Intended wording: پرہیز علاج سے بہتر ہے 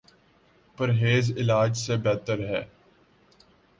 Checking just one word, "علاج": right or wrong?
right